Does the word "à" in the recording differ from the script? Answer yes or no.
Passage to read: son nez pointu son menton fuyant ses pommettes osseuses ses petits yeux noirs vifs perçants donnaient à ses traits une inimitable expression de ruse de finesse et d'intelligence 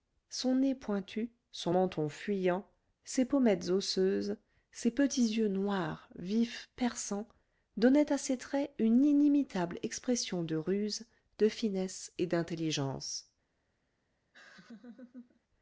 no